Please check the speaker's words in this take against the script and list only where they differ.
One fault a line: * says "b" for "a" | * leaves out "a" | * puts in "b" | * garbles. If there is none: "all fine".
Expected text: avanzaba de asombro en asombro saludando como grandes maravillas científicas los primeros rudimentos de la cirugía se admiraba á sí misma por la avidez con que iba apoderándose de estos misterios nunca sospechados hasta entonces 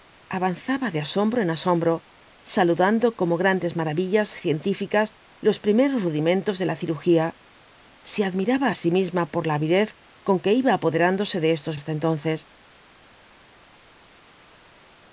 * leaves out "misterios nunca sospechados"